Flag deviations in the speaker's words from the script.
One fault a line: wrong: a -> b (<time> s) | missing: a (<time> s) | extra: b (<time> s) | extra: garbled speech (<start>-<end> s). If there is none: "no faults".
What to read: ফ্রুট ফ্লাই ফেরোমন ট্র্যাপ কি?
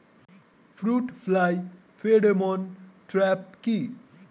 no faults